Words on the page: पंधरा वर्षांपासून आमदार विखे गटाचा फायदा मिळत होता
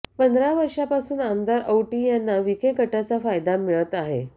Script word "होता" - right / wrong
wrong